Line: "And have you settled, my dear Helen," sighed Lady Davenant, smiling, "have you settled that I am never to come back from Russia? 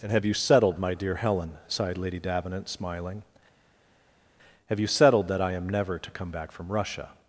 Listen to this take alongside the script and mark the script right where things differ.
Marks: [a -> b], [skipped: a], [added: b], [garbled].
"And have you settled, my dear Helen," sighed Lady Davenant, smiling, "have you settled that I am never to come back from Russia?